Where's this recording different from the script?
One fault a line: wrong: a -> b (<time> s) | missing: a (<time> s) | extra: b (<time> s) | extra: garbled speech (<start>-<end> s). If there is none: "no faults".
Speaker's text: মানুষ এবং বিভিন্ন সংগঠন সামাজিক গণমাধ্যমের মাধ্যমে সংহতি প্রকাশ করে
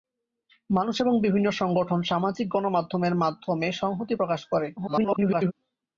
extra: garbled speech (4.8-5.5 s)